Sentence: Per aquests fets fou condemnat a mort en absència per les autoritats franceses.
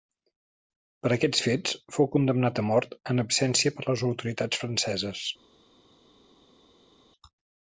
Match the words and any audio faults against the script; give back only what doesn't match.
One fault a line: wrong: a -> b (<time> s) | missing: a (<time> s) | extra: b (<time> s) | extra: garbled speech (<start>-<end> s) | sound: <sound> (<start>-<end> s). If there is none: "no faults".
no faults